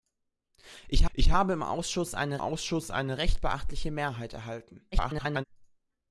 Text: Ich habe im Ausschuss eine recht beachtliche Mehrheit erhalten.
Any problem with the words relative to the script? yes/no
yes